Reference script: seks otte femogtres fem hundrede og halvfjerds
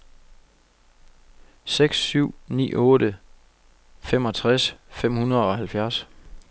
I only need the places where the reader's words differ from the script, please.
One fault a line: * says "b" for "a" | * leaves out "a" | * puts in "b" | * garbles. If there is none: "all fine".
* puts in "syv ni"